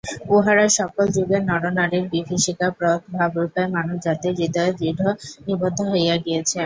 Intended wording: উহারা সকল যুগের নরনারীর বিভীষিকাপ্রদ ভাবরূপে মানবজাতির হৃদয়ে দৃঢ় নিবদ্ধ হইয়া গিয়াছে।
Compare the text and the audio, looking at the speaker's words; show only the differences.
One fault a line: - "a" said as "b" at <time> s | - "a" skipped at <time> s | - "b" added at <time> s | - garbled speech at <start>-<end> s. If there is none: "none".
none